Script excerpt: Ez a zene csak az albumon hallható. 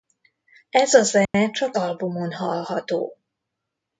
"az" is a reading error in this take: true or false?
true